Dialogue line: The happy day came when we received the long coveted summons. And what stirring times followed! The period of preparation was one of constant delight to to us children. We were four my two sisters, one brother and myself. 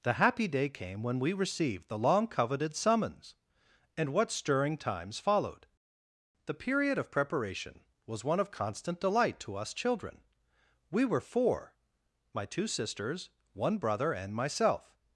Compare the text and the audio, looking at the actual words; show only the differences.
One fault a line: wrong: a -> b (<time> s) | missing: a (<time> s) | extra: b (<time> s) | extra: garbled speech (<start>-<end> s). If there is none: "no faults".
missing: to (9.6 s)